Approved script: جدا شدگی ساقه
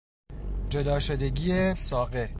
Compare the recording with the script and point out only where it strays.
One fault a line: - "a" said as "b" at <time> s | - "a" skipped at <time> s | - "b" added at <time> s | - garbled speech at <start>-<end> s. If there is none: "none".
none